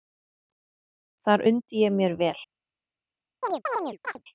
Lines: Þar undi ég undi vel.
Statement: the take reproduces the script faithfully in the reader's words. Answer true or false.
false